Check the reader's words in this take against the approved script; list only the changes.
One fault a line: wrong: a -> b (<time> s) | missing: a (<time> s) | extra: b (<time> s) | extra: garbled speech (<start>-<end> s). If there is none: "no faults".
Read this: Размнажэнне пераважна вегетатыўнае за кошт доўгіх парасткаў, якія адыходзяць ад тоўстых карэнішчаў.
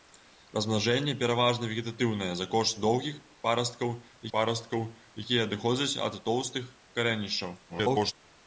extra: парасткаў (4.4 s)
extra: garbled speech (7.7-8.1 s)